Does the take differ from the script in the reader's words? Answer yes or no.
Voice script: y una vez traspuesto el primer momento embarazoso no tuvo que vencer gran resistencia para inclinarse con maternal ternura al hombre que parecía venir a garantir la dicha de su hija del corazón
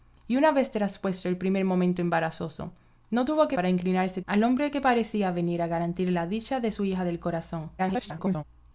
yes